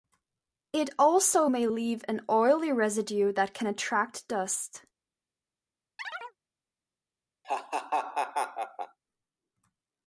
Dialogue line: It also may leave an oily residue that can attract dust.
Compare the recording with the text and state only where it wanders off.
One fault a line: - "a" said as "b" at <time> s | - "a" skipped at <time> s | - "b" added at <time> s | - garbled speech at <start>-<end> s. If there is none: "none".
none